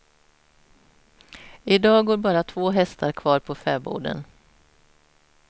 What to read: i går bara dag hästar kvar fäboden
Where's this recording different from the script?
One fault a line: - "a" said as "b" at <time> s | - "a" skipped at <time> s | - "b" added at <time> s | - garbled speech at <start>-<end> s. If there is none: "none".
- "dag" added at 1.8 s
- "dag" said as "två" at 2.4 s
- "på" added at 3.4 s